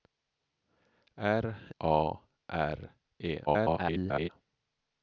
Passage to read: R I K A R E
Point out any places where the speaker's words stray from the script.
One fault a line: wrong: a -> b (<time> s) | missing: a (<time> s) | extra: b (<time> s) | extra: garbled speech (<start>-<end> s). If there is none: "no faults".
missing: I K (1.4 s)
extra: garbled speech (3.5-4.3 s)